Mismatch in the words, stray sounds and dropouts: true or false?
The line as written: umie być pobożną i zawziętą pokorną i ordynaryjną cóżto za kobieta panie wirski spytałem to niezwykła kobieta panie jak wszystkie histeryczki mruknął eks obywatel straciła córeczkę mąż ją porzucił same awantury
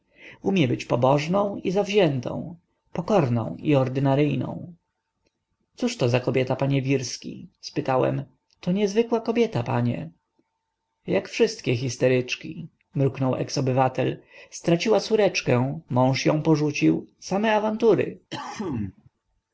true